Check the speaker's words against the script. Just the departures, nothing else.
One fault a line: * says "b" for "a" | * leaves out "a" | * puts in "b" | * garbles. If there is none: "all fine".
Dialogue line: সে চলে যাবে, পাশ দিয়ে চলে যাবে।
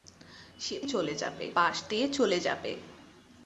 all fine